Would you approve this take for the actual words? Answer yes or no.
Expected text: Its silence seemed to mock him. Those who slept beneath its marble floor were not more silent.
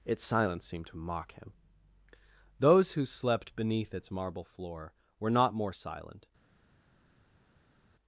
yes